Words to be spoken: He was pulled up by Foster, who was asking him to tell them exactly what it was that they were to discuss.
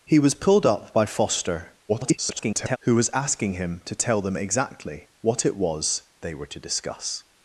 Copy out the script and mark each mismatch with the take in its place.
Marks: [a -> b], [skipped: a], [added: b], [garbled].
He was pulled up by Foster, [garbled] who was asking him to tell them exactly what it was [skipped: that] they were to discuss.